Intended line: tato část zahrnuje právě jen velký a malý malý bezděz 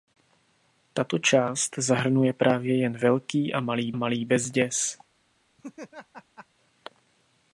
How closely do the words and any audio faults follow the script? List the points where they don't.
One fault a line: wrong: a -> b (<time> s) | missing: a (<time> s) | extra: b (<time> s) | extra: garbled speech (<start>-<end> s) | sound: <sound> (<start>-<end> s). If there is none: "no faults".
sound: laugh (5.6-6.5 s)